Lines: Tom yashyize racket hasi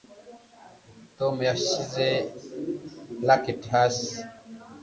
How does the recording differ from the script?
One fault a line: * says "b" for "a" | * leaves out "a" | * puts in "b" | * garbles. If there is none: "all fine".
all fine